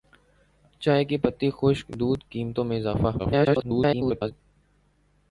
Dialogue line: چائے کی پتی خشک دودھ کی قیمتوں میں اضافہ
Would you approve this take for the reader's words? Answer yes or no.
no